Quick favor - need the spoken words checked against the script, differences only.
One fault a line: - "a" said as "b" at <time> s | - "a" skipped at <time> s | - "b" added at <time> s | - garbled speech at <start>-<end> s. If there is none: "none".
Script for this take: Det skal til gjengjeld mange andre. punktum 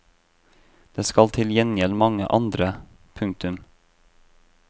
none